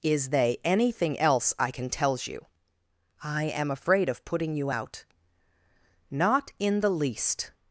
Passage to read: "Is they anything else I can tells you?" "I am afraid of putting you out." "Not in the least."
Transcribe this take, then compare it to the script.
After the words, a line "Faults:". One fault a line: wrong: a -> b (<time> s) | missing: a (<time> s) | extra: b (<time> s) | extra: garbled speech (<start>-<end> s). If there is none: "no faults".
"Is they anything else I can tells you?" "I am afraid of putting you out." "Not in the least."
Faults:
no faults